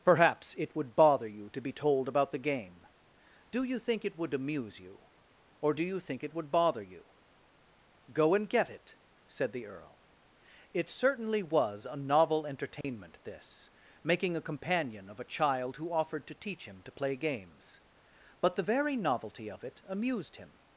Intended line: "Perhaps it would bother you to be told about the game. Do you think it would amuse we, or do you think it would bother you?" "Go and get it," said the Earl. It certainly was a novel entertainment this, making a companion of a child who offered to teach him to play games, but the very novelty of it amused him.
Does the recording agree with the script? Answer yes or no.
no